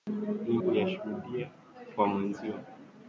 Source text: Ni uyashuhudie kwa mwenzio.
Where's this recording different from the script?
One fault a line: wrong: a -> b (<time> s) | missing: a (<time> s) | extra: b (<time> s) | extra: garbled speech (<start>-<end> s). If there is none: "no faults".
no faults